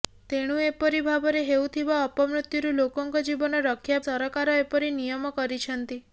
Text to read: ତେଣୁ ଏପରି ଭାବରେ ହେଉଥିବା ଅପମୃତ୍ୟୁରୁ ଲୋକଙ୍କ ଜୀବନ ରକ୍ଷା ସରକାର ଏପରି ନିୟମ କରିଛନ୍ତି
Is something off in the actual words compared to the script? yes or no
no